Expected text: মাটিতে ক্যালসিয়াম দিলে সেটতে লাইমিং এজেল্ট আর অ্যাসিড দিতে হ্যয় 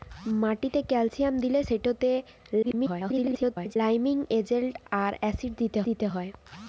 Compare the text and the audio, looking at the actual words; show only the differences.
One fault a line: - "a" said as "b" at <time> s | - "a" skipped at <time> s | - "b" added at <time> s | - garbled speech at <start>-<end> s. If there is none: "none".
- garbled speech at 2.6-3.8 s
- "দিতে" added at 5.9 s